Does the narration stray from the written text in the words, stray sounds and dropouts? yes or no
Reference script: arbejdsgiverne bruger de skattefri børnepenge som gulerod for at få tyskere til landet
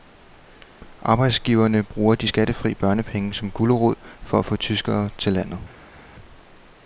no